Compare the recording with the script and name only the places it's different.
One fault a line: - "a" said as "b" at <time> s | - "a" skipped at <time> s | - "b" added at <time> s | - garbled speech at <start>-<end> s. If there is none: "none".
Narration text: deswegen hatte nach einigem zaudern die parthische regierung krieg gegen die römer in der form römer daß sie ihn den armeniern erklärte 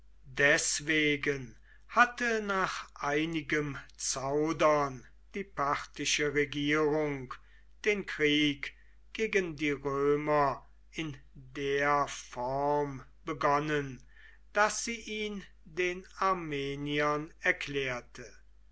- "den" added at 7.8 s
- "römer" said as "begonnen" at 13.2 s